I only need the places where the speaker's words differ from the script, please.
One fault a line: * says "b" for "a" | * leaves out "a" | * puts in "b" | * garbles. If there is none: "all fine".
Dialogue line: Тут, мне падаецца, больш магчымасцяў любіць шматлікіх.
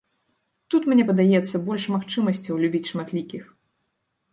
all fine